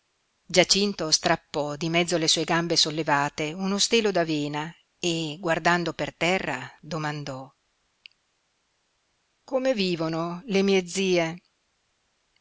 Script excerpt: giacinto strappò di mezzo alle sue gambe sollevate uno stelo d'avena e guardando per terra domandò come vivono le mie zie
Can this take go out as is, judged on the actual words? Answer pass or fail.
pass